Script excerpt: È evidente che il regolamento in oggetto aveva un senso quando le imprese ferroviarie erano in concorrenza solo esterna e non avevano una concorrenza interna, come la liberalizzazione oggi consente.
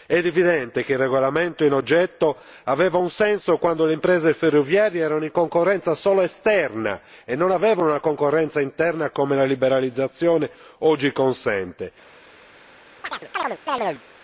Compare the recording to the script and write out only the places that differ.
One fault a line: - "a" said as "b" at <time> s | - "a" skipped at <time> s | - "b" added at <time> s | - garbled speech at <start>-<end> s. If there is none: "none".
none